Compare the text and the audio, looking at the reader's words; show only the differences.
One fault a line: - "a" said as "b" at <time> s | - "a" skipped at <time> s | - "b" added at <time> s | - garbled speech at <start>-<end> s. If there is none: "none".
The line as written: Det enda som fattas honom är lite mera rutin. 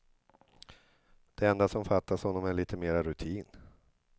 none